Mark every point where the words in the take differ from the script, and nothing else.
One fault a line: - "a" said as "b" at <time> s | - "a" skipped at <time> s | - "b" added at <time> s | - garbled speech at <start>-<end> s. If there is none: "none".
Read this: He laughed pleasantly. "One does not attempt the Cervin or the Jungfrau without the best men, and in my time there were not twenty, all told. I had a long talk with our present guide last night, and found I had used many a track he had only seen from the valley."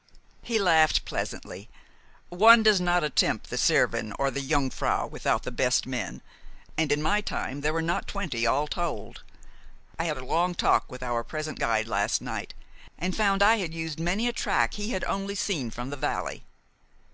none